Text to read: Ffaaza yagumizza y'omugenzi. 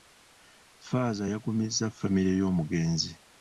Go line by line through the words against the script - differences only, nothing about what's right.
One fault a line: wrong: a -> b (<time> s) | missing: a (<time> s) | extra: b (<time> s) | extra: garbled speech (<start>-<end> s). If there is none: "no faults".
extra: famire (2.0 s)